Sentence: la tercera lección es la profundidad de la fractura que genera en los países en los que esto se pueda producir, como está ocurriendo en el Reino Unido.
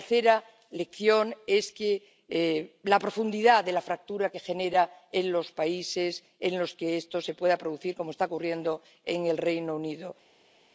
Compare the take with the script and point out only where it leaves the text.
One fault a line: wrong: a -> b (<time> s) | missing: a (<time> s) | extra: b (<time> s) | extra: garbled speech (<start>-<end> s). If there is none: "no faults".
no faults